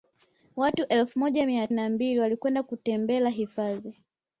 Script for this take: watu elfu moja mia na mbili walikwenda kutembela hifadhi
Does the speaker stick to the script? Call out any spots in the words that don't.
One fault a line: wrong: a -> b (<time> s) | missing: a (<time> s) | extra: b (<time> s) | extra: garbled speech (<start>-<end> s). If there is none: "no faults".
no faults